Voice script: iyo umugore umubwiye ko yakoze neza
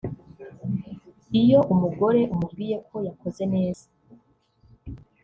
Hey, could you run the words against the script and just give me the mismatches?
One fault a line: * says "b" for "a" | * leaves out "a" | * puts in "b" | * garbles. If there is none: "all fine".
all fine